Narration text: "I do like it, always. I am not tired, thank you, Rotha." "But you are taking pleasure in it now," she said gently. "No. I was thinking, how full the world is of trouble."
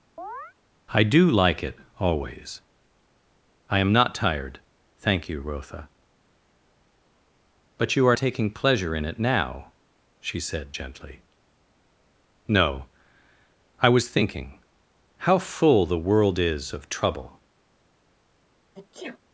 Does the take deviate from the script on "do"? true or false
false